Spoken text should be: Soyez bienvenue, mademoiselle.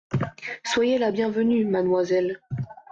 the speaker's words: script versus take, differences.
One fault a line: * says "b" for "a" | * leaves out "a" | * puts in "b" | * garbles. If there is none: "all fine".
* puts in "la"